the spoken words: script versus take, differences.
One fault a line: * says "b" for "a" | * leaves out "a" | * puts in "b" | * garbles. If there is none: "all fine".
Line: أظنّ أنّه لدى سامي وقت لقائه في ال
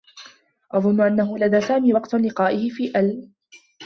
all fine